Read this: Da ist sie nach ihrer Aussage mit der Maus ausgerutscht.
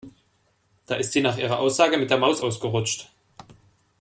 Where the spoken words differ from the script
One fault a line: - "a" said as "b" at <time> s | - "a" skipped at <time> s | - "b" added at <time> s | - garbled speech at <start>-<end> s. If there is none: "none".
none